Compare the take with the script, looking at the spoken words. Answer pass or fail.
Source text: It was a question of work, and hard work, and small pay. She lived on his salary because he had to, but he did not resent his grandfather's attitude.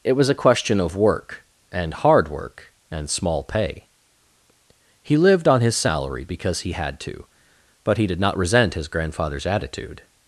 fail